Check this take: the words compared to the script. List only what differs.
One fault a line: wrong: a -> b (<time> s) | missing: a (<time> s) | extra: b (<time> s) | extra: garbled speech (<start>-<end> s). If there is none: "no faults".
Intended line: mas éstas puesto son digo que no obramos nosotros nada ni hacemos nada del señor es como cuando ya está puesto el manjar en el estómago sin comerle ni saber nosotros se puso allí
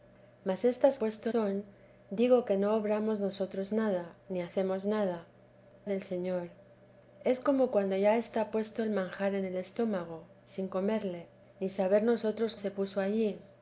no faults